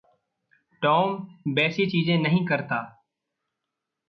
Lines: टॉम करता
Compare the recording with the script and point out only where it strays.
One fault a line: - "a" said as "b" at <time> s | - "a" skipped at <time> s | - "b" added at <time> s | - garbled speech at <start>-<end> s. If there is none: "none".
- "वैसी चीज़ें नहीं" added at 1.5 s